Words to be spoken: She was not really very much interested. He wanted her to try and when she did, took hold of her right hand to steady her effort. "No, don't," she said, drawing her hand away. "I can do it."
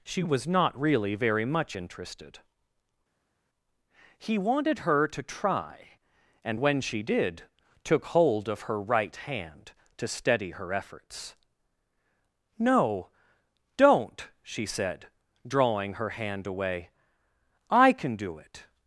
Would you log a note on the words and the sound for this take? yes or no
yes